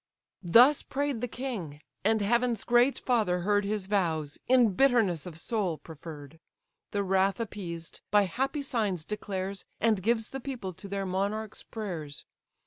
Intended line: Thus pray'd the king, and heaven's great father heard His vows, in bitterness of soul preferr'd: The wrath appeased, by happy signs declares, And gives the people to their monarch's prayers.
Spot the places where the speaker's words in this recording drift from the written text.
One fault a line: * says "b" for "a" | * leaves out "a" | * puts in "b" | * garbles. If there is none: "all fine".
all fine